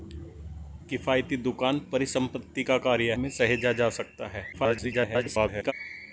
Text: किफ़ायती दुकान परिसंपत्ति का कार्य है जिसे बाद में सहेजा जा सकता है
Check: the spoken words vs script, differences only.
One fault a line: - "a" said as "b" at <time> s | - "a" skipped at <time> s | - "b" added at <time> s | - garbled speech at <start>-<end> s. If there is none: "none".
- "है जिसे बाद" skipped at 3.1 s
- garbled speech at 4.5-5.7 s